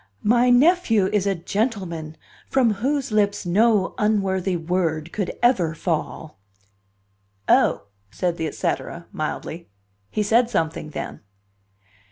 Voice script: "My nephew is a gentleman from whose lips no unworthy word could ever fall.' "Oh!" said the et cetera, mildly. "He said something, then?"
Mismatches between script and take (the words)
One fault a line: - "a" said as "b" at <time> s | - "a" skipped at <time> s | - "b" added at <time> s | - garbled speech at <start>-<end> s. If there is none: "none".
none